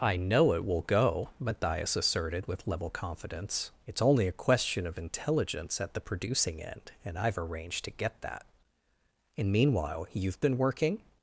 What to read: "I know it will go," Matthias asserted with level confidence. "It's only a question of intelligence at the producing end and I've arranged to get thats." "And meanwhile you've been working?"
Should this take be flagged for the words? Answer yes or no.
yes